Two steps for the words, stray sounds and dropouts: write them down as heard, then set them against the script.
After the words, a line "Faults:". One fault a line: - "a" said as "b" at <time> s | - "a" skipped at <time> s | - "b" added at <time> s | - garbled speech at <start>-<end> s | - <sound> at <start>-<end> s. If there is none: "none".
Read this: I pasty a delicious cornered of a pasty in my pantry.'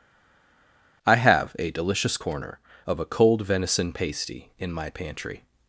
I have a delicious corner of a cold venison pasty in my pantry.'
Faults:
- "pasty" said as "have" at 1.2 s
- "cornered" said as "corner" at 2.2 s
- "cold venison" added at 3.0 s